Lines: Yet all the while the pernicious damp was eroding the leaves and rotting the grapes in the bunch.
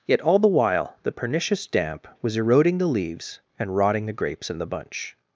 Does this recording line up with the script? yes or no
yes